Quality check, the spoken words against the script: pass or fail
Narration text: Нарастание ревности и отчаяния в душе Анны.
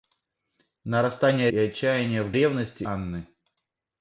fail